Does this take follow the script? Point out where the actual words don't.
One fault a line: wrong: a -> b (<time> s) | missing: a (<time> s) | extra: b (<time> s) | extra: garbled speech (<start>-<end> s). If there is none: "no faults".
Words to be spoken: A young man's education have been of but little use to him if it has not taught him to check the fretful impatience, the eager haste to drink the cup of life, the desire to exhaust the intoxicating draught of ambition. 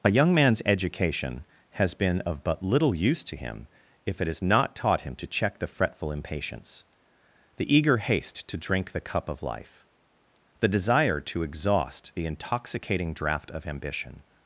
wrong: have -> has (1.7 s)